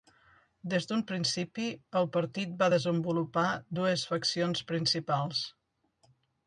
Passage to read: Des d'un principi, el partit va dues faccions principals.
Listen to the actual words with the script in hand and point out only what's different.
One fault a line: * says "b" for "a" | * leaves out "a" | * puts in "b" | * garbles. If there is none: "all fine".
* puts in "desenvolupar"